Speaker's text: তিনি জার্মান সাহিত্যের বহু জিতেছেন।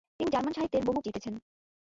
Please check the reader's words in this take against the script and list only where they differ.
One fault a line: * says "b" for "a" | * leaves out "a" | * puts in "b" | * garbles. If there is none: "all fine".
all fine